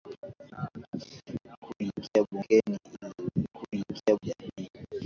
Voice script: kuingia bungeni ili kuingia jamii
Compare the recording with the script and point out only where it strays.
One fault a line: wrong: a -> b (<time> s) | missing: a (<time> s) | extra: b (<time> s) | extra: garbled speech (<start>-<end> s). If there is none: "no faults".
no faults